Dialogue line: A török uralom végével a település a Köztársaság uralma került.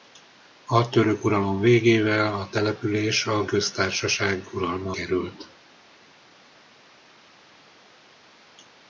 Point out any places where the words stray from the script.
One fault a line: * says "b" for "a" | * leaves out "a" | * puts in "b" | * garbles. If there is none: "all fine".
all fine